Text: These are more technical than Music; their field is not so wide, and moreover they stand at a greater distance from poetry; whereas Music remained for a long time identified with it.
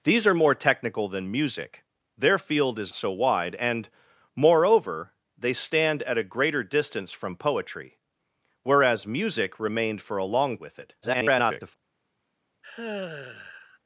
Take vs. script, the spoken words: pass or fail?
fail